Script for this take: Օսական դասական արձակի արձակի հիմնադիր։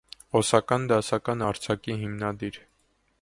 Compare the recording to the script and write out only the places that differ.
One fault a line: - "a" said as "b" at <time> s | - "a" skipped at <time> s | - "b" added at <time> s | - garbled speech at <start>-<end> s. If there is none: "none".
- "արձակի" skipped at 2.0 s